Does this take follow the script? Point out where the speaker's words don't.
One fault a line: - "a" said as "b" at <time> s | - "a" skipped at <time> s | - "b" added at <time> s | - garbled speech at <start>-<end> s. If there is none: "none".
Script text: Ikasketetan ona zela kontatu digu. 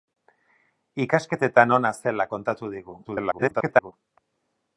- garbled speech at 3.0-3.9 s